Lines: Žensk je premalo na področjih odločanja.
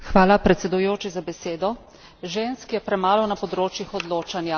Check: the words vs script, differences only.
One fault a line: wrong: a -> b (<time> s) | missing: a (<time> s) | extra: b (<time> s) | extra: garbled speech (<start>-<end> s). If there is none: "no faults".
no faults